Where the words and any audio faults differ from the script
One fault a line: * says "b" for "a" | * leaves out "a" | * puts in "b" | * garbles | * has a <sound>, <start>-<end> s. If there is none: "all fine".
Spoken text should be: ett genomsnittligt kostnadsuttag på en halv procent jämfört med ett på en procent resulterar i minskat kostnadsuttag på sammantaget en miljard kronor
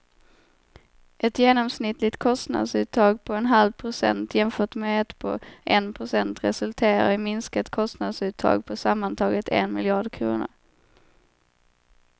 all fine